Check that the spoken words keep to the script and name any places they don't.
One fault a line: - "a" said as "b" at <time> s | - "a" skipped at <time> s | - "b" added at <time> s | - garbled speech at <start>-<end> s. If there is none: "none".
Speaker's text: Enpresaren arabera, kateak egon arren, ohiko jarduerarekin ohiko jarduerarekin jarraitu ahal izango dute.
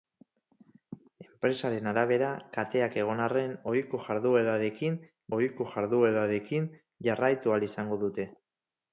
none